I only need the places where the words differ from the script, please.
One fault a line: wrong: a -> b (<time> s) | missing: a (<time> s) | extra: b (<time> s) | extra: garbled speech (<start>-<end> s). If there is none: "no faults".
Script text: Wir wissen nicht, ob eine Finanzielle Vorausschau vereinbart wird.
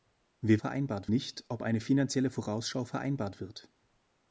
wrong: wissen -> vereinbart (0.6 s)